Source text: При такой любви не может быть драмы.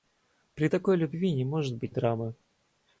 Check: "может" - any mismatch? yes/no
no